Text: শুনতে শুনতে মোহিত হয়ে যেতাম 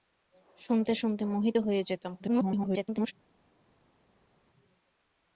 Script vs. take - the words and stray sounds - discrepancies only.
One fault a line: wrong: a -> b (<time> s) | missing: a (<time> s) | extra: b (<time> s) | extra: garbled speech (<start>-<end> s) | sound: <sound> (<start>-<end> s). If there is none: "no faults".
extra: garbled speech (2.2-3.1 s)